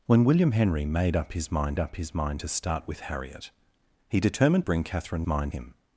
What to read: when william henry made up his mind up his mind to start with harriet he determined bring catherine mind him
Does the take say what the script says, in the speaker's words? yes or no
yes